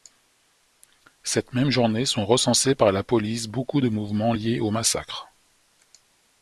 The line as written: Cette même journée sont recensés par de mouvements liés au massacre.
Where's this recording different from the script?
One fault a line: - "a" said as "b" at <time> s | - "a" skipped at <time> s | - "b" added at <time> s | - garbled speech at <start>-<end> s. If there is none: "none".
- "la police beaucoup" added at 2.9 s